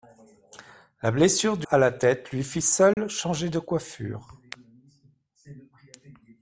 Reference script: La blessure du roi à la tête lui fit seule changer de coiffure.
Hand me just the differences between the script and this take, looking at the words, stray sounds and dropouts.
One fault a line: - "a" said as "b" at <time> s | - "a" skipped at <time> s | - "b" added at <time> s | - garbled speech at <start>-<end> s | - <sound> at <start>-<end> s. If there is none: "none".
- "roi" skipped at 1.7 s
- dropout at 2.9-3.0 s